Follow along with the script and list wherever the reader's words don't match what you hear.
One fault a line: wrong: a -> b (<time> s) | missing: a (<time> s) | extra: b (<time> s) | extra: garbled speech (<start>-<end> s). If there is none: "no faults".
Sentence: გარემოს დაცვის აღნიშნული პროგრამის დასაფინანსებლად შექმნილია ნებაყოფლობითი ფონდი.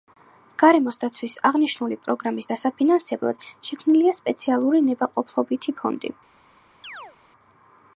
extra: სპეციალური (4.2 s)